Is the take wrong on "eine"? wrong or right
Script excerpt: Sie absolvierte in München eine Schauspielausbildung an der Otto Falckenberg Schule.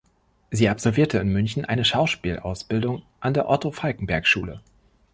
right